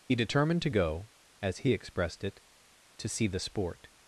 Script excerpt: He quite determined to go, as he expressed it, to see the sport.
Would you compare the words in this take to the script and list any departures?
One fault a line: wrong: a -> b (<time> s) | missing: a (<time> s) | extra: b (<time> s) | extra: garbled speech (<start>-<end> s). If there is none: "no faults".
missing: quite (0.1 s)